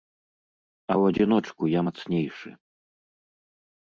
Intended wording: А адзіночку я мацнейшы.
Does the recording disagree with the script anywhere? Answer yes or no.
yes